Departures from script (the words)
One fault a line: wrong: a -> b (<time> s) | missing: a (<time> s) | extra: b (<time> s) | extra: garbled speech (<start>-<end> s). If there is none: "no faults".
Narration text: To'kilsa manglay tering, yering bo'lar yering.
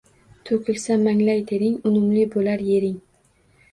wrong: yering -> unumli (1.9 s)